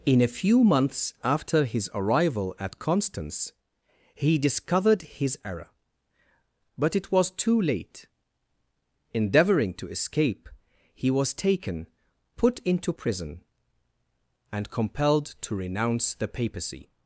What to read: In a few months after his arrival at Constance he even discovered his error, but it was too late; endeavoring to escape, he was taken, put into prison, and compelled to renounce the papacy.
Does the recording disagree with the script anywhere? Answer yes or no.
yes